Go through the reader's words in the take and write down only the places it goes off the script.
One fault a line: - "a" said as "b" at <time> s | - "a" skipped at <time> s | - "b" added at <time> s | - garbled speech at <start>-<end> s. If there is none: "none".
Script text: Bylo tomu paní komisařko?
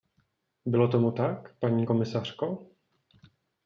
- "tak" added at 1.1 s